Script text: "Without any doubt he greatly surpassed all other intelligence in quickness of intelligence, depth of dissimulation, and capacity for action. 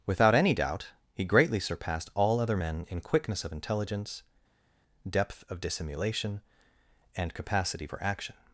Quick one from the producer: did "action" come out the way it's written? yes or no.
yes